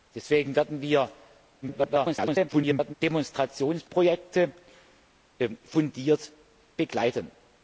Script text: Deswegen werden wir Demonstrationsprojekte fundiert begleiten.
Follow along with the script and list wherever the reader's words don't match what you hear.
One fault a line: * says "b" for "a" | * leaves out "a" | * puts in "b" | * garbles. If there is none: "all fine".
* garbles